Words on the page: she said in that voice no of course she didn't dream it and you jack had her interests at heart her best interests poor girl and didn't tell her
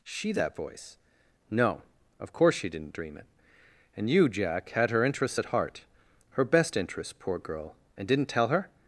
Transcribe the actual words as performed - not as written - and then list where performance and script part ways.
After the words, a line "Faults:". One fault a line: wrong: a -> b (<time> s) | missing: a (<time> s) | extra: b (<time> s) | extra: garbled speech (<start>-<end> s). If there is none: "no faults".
she that voice no of course she didn't dream it and you jack had her interests at heart her best interests poor girl and didn't tell her
Faults:
missing: said in (0.3 s)